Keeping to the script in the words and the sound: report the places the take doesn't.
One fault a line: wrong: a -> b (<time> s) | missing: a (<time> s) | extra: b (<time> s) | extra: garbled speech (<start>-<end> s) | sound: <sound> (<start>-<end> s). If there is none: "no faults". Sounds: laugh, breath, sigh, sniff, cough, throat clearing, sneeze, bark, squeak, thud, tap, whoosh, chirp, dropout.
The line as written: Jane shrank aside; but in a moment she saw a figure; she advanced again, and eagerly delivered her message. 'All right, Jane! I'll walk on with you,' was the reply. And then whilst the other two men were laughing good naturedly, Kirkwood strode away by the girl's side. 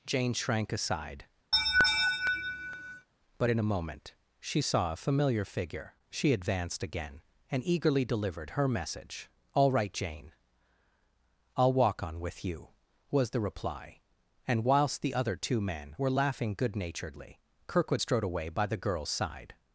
sound: laugh (1.5-3.1 s)
extra: familiar (5.0 s)
missing: then (14.6 s)